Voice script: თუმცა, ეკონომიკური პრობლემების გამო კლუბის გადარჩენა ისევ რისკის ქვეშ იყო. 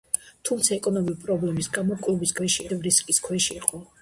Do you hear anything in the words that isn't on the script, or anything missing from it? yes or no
yes